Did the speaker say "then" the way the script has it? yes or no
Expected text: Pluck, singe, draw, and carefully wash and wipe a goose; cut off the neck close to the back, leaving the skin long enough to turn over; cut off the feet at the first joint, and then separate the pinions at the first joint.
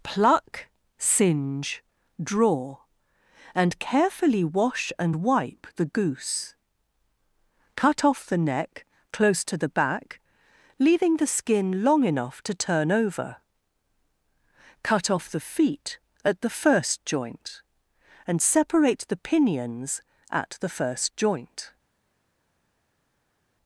no